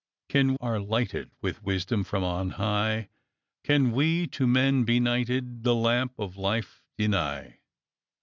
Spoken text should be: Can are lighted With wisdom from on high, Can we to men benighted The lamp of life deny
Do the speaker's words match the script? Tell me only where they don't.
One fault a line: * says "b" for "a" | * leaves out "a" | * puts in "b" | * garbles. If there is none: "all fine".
all fine